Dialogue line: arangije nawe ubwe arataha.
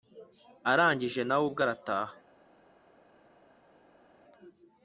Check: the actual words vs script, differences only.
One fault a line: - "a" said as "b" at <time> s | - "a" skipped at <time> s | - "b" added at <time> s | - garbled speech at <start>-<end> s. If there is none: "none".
none